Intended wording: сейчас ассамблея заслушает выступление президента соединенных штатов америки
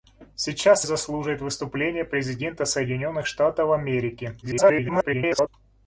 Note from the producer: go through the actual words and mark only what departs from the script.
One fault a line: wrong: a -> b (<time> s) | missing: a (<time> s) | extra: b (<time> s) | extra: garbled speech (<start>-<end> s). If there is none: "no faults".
missing: ассамблея (0.9 s)
extra: garbled speech (4.4-5.5 s)